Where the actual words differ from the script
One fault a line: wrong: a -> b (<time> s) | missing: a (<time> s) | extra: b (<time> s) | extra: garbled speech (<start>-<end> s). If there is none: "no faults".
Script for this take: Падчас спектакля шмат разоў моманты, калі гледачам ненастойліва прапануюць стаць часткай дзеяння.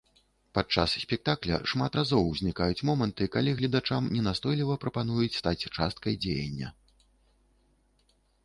extra: узнікаюць (2.3 s)